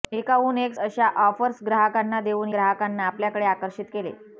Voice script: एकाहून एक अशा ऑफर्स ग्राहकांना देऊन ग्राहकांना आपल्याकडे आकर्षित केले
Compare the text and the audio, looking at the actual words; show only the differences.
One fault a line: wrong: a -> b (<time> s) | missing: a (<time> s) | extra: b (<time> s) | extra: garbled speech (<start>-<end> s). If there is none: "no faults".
no faults